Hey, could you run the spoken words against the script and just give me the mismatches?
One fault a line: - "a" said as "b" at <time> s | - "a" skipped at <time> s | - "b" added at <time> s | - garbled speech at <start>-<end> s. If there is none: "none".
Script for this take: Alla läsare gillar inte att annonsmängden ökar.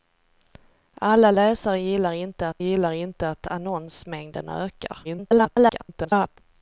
- "gillar inte att" added at 2.6 s
- garbled speech at 5.0-6.4 s